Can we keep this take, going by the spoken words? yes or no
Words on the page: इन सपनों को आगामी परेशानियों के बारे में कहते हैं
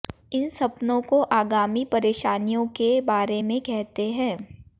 yes